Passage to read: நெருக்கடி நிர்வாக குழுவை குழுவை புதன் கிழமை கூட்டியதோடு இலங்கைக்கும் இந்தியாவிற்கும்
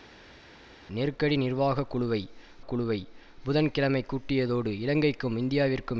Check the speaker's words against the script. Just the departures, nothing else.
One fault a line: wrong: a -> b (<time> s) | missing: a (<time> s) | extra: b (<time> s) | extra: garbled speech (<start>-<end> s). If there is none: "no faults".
no faults